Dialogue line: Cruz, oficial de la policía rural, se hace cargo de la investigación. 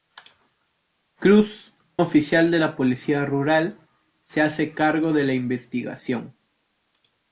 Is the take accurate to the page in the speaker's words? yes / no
yes